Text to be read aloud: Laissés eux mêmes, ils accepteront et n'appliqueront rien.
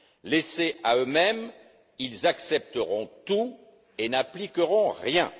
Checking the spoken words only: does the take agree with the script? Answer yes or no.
no